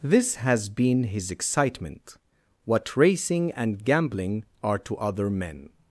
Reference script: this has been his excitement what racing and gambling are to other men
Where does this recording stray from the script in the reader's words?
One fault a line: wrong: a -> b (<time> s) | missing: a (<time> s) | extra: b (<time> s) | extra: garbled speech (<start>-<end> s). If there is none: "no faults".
no faults